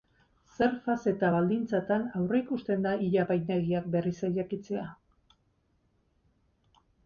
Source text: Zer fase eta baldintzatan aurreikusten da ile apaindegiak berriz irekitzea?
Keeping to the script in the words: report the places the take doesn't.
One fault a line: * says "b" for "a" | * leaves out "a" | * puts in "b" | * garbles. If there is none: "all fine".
all fine